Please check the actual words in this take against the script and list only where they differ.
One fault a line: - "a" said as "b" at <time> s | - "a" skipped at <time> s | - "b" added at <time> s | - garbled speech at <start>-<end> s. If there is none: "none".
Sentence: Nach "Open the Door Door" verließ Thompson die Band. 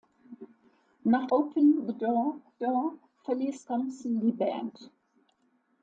none